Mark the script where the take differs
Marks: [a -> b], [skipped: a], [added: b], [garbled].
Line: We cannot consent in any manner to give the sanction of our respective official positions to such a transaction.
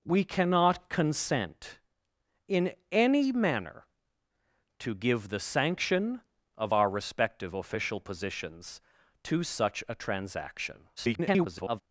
We cannot consent in any manner to give the sanction of our respective official positions to such a transaction. [garbled]